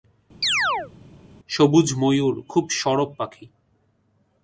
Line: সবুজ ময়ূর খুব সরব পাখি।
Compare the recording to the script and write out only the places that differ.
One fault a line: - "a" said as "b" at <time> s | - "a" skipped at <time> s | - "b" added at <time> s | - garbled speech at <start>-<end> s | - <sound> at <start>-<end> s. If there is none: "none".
- chirp at 0.4-0.9 s